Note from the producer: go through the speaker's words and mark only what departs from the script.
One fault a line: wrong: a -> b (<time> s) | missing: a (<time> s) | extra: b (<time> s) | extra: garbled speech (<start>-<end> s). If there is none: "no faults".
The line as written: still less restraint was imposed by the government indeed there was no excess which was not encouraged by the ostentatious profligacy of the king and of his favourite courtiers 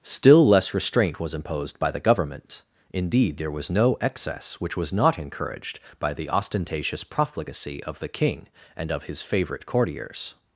no faults